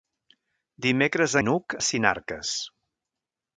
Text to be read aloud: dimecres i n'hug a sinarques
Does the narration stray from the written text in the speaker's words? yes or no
no